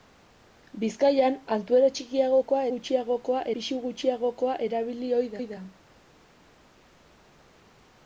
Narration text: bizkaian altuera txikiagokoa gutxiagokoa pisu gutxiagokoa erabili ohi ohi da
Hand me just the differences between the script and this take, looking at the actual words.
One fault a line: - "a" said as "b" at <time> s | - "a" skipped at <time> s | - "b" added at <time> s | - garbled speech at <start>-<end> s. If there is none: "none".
none